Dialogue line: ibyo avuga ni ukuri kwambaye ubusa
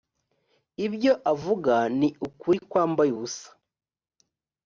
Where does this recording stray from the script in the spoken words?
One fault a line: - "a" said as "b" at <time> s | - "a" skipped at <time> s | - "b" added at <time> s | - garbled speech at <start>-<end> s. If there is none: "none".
none